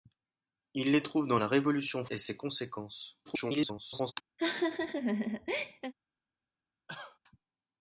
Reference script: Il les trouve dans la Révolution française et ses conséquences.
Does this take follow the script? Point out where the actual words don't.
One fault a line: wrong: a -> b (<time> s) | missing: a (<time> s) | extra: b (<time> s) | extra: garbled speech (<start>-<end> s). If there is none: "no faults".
missing: française (2.1 s)
extra: garbled speech (3.3-4.1 s)